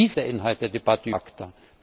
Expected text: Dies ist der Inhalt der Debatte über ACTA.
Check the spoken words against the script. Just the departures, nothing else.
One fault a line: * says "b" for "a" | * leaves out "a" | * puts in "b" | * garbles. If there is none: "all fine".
* leaves out "ist"
* leaves out "über"